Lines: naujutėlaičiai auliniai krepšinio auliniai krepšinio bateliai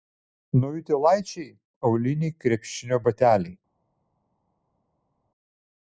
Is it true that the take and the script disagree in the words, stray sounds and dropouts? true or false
true